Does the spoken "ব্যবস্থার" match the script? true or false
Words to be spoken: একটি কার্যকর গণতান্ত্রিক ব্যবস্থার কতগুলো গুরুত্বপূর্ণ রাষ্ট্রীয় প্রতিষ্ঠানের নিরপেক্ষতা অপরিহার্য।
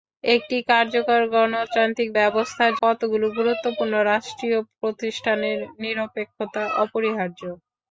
true